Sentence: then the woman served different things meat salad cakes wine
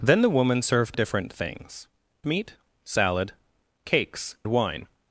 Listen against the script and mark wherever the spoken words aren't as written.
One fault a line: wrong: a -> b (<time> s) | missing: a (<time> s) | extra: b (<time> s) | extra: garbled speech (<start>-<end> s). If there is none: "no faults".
no faults